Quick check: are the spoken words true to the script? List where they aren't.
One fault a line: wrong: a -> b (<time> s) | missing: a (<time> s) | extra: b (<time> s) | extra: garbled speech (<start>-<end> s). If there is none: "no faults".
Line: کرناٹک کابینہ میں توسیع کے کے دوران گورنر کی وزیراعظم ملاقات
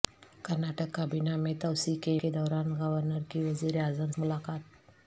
no faults